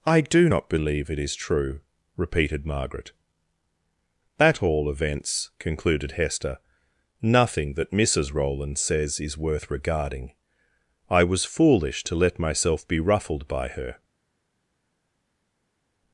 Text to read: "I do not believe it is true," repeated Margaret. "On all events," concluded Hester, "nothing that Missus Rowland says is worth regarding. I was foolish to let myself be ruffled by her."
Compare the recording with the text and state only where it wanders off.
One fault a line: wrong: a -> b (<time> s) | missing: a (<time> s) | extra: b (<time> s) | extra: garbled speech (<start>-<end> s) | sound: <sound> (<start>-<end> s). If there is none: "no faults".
wrong: On -> At (4.4 s)